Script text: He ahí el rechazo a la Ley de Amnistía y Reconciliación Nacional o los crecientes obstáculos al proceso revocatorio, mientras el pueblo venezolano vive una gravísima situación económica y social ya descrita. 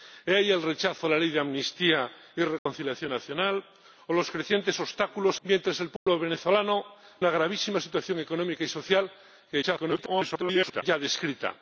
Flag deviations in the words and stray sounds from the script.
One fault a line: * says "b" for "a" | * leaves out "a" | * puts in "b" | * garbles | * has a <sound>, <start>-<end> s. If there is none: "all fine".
* has a dropout, 2.6-2.7 s
* leaves out "al proceso revocatorio"
* has a dropout, 6.0-6.1 s
* leaves out "vive"
* garbles